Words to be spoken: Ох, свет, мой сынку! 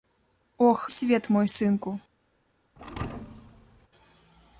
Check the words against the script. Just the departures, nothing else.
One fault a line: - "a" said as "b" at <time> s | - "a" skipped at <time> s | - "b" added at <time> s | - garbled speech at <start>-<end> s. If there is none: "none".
none